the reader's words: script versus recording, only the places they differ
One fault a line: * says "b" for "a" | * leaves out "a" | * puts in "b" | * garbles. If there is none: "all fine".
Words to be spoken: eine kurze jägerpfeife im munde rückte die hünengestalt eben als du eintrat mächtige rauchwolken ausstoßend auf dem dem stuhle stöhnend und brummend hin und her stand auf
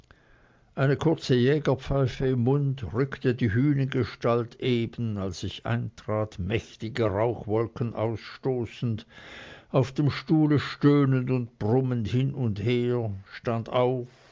* says "ich" for "du"
* leaves out "dem"